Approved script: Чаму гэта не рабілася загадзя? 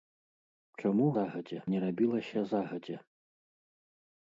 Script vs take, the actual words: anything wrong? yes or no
yes